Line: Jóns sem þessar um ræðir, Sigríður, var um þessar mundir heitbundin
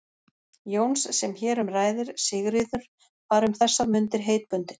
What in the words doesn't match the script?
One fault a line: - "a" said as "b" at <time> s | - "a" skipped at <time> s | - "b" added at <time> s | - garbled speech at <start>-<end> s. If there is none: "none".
- "þessar" said as "hér" at 1.4 s